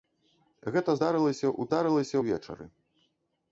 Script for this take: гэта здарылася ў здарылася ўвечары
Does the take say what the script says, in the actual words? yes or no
yes